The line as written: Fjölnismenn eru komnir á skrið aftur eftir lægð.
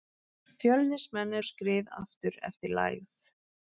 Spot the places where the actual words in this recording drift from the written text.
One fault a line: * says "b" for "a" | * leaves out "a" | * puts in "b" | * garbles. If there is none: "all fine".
* leaves out "eru komnir"